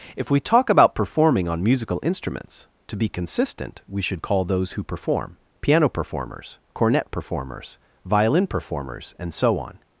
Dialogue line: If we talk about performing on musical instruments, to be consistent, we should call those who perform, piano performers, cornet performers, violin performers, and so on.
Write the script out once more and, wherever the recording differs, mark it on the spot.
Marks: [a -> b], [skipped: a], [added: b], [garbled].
If we talk about performing on musical instruments, to be consistent, we should call those who perform, piano performers, cornet performers, violin performers, and so on.